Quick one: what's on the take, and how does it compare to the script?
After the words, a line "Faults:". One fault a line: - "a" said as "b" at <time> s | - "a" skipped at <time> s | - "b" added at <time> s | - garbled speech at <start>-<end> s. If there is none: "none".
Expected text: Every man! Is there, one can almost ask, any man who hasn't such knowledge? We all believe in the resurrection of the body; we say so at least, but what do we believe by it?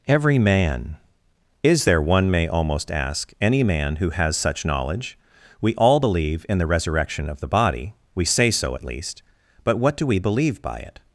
Every man! Is there, one may almost ask, any man who has such knowledge? We all believe in the resurrection of the body; we say so at least, but what do we believe by it?
Faults:
- "can" said as "may" at 2.3 s
- "hasn't" said as "has" at 4.1 s